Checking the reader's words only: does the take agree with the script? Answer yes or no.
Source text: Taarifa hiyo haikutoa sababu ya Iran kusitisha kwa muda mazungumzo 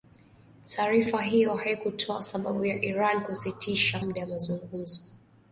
no